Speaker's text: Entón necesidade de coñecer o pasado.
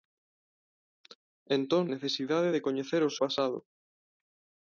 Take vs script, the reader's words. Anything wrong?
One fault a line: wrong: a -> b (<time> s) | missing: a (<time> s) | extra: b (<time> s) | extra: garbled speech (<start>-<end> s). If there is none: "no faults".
no faults